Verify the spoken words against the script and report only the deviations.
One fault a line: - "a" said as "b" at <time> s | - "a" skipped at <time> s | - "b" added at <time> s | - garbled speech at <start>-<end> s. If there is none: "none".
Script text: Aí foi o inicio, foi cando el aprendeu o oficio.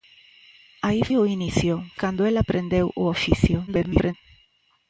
- "foi" skipped at 1.0 s
- "foi" skipped at 1.8 s
- garbled speech at 3.7-4.1 s